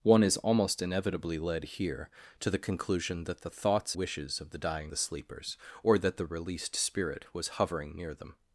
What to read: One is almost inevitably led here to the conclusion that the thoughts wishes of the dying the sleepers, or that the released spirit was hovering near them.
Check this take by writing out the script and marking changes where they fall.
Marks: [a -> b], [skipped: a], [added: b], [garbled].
One is almost inevitably led here to the conclusion that the thoughts wishes of the dying the sleepers, or that the released spirit was hovering near them.